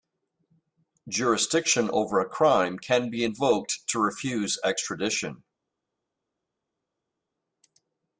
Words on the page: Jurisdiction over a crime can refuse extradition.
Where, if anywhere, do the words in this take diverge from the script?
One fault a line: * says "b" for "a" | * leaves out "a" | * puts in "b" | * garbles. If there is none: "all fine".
* puts in "be invoked to"